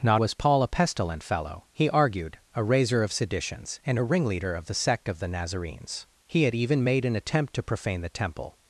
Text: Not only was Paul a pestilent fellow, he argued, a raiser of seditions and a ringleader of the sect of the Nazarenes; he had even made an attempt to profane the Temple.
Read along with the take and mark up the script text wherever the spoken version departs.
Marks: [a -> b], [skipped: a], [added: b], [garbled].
Not [skipped: only] was Paul a pestilent fellow, he argued, a raiser of seditions and a ringleader of the sect of the Nazarenes; he had even made an attempt to profane the Temple.